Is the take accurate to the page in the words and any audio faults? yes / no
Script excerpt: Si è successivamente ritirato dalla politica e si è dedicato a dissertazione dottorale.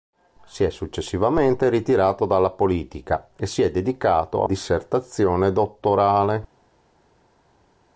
yes